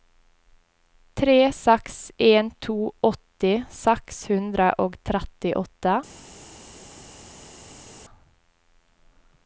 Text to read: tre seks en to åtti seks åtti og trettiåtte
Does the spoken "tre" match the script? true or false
true